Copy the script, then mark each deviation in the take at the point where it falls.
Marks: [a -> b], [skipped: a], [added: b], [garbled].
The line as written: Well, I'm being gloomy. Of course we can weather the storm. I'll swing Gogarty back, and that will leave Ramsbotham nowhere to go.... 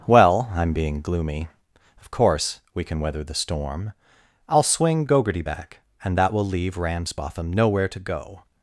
Well, I'm being gloomy. Of course we can weather the storm. I'll swing Gogarty back, and that will leave Ramsbotham nowhere to go....